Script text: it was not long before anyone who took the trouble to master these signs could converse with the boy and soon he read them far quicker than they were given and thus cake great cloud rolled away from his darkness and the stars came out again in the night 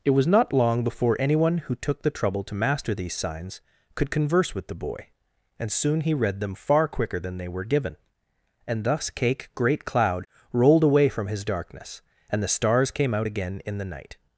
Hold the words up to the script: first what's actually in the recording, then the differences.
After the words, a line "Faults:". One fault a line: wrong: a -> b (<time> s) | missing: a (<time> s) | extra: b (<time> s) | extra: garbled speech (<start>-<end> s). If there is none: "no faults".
it was not long before anyone who took the trouble to master these signs could converse with the boy and soon he read them far quicker than they were given and thus cake great cloud rolled away from his darkness and the stars came out again in the night
Faults:
no faults